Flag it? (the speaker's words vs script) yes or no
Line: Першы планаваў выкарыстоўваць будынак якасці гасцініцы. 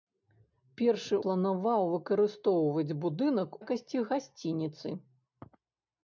no